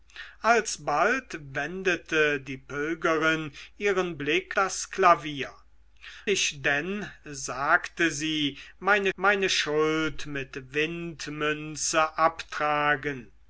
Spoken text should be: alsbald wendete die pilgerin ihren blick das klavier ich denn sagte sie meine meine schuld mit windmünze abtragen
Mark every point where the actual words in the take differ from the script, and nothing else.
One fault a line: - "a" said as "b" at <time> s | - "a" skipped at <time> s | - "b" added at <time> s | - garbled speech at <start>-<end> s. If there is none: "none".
none